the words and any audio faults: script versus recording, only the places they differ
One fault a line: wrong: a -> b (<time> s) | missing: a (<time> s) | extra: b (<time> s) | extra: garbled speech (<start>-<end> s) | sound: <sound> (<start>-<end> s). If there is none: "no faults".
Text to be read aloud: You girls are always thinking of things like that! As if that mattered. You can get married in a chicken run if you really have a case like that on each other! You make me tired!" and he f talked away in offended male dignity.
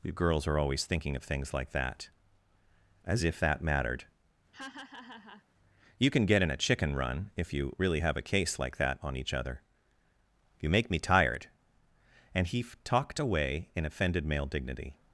sound: laugh (4.5-5.4 s)
missing: married (6.4 s)